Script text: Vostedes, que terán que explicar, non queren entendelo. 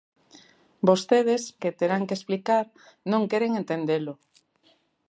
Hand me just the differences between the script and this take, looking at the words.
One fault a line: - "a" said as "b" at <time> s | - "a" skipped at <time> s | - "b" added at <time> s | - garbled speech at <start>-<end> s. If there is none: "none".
none